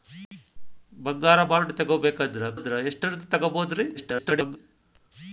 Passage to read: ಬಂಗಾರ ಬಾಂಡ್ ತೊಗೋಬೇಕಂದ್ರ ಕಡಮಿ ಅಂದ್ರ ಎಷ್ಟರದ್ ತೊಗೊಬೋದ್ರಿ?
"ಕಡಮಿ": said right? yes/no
no